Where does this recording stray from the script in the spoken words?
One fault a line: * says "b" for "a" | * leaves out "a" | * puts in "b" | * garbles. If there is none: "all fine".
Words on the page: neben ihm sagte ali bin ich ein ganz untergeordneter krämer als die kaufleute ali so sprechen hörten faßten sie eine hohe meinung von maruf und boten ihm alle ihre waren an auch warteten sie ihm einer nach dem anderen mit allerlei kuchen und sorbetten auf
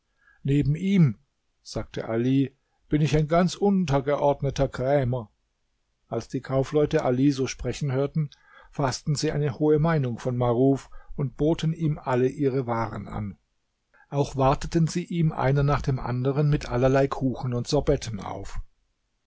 all fine